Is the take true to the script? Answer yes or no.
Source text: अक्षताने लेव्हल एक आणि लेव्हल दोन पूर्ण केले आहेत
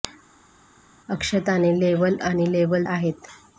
no